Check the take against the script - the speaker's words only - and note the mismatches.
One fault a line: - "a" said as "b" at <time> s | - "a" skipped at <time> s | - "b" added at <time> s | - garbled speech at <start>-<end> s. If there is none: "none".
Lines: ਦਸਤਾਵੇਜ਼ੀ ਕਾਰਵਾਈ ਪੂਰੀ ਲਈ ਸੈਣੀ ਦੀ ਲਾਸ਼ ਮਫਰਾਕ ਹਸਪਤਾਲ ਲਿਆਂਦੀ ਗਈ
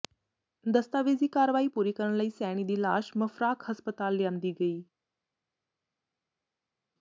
- "ਕਰਨ" added at 1.9 s